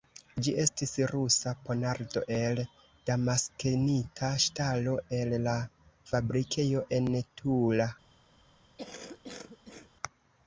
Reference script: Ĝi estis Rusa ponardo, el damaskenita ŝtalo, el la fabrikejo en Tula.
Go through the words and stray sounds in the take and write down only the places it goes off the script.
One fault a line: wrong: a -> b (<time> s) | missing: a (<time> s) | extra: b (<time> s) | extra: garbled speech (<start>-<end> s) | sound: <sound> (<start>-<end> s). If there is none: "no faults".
sound: cough (8.8-9.9 s)